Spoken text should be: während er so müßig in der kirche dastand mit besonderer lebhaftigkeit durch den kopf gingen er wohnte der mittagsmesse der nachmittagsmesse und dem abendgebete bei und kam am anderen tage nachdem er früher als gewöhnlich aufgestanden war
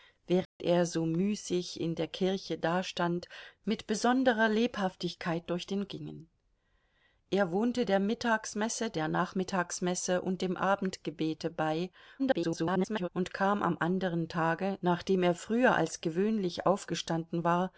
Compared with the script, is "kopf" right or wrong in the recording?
wrong